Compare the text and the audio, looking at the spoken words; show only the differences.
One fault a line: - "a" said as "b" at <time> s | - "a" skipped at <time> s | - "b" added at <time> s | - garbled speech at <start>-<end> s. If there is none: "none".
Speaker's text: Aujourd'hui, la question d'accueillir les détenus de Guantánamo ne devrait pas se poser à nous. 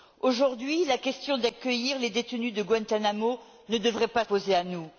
- "se" skipped at 4.2 s